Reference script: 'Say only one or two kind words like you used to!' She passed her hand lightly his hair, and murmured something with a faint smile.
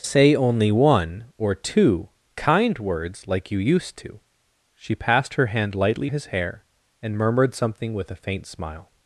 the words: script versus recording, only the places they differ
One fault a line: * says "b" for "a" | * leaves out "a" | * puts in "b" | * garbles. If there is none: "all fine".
all fine